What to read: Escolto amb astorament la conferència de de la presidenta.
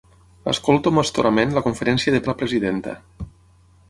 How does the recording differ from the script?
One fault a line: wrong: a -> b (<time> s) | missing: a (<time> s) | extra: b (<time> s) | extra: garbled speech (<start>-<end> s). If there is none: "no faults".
no faults